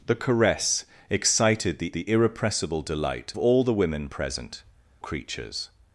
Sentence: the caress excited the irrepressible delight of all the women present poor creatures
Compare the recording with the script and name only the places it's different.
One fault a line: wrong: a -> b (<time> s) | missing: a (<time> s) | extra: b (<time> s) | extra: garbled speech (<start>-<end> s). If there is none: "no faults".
extra: the (1.9 s)
missing: of (3.3 s)
missing: poor (4.6 s)